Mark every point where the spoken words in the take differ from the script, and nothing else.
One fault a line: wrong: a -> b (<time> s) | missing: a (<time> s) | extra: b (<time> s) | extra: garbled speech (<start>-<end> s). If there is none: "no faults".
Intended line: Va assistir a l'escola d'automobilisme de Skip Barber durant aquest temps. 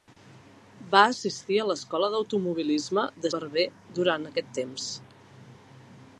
missing: Skip (3.3 s)